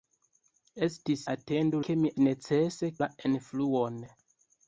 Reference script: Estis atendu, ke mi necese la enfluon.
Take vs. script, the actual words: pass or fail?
pass